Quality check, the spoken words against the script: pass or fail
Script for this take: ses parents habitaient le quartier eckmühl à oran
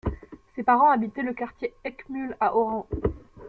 pass